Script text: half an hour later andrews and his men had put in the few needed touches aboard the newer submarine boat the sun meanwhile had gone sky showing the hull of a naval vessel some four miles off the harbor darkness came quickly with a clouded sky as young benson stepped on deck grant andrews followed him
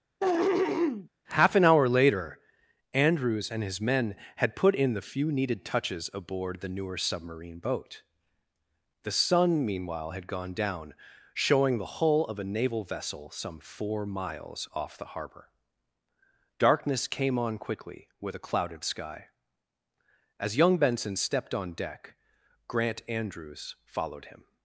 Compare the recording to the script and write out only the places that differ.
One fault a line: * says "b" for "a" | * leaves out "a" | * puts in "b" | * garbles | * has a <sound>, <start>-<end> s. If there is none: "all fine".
* has a throat clearing, 0.2-1.1 s
* says "down" for "sky"
* puts in "on"